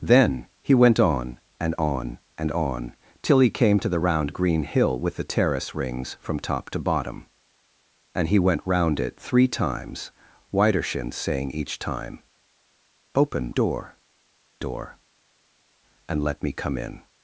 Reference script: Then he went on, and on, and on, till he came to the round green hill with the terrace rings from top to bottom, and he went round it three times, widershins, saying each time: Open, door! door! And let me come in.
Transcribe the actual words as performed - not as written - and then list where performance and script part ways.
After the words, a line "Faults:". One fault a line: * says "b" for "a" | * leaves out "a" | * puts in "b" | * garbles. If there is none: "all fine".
Then he went on, and on, and on, till he came to the round green hill with the terrace rings from top to bottom, and he went round it three times, widershins, saying each time: Open, door! door! And let me come in.
Faults:
all fine